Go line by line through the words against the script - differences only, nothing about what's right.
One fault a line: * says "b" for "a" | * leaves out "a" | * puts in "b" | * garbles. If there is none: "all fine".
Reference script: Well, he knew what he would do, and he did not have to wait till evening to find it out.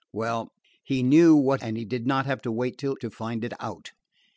* leaves out "he would do"
* leaves out "evening"